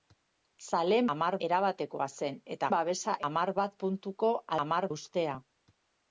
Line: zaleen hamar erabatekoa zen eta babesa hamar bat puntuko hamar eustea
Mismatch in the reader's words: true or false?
false